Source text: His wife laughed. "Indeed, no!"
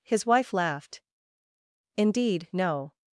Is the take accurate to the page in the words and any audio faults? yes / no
yes